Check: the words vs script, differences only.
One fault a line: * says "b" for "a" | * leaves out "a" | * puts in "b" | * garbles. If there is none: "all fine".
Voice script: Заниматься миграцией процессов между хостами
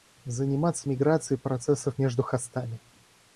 all fine